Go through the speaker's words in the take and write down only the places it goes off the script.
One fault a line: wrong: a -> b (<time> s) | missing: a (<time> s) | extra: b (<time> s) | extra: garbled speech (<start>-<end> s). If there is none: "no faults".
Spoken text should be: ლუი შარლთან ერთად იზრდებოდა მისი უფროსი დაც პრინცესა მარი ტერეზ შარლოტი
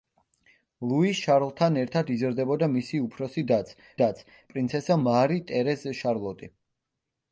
extra: დაც (4.0 s)